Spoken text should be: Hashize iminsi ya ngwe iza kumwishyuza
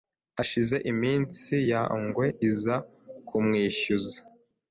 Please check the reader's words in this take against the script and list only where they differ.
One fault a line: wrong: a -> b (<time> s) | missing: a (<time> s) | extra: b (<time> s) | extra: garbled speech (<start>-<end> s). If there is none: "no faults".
no faults